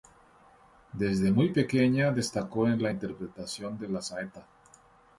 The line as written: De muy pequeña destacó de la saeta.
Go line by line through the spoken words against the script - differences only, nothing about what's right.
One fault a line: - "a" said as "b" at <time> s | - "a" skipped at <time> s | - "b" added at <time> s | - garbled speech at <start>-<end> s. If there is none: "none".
- "De" said as "Desde" at 0.9 s
- "en la interpretación" added at 2.7 s